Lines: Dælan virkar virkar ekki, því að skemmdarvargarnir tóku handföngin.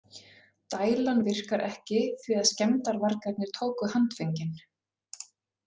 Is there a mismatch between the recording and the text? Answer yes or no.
yes